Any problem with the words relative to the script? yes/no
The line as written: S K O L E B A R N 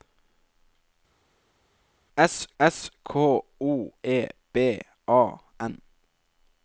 yes